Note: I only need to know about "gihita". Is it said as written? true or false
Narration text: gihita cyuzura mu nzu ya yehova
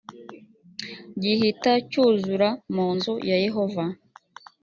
true